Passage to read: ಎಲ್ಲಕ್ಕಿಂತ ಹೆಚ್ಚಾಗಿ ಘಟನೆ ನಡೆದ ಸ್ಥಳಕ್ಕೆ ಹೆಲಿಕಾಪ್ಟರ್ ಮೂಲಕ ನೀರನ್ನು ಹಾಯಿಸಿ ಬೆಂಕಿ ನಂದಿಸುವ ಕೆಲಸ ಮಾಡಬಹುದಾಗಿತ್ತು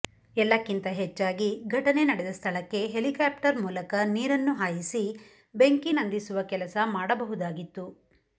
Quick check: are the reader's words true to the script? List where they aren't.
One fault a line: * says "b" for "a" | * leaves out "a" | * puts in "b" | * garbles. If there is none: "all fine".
all fine